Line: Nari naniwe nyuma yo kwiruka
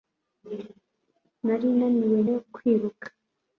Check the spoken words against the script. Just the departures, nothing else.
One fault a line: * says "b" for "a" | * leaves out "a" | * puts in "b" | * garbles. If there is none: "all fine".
* leaves out "nyuma"